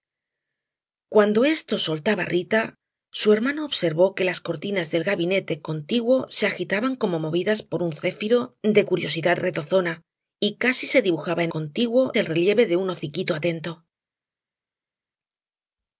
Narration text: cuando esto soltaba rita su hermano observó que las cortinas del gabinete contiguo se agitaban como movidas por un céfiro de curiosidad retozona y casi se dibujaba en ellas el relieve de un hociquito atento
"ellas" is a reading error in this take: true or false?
true